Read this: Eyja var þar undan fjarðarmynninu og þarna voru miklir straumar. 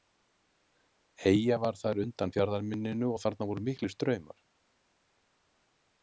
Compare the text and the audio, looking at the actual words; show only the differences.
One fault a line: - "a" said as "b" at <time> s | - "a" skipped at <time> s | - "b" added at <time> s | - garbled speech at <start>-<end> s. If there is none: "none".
none